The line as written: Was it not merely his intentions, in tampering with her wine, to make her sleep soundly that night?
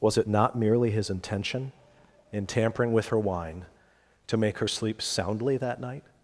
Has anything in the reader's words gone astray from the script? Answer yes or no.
yes